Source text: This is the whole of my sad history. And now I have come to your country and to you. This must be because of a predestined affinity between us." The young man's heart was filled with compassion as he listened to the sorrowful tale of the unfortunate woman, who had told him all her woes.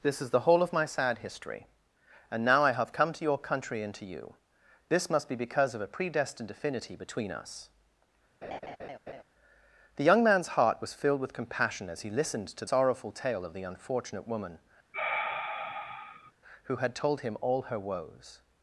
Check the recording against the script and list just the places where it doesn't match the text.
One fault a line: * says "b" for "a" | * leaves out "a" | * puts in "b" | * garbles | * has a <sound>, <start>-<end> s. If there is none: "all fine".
* has a laugh, 8.4-9.2 s
* leaves out "the"
* has a sigh, 14.9-16.3 s